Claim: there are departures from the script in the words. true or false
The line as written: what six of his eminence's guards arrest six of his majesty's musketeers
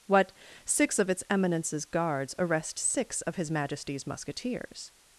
true